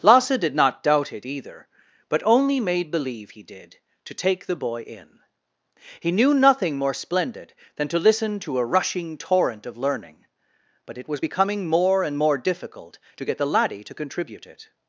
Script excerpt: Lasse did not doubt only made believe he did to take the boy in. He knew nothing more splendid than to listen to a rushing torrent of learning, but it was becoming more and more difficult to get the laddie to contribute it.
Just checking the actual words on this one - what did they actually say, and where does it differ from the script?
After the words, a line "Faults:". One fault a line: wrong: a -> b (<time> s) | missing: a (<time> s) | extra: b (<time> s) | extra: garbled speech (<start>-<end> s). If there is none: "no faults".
Lasse did not doubt it either, but only made believe he did to take the boy in. He knew nothing more splendid than to listen to a rushing torrent of learning, but it was becoming more and more difficult to get the laddie to contribute it.
Faults:
extra: it either but (1.1 s)